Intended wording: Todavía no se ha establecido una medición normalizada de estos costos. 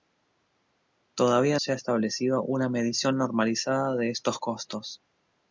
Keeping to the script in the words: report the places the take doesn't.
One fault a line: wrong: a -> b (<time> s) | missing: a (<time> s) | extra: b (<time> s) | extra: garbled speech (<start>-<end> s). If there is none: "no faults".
missing: no (1.6 s)